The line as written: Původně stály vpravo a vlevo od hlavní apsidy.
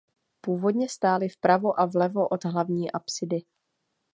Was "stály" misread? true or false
false